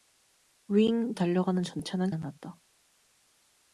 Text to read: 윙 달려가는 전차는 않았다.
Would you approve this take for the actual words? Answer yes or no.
yes